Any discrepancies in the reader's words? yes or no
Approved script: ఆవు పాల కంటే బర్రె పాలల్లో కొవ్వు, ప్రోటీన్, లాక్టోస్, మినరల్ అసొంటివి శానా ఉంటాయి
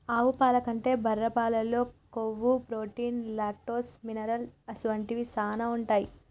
no